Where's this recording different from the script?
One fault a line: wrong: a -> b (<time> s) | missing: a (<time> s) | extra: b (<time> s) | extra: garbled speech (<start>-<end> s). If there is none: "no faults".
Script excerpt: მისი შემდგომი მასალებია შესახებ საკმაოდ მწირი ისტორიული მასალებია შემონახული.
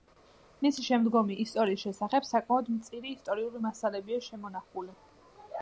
wrong: მასალებია -> ისტორიის (1.4 s)